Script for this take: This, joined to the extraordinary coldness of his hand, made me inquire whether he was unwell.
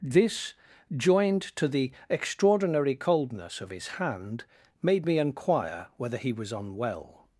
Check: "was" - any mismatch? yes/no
no